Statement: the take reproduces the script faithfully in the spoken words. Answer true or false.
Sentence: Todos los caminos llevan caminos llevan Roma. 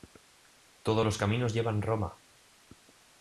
false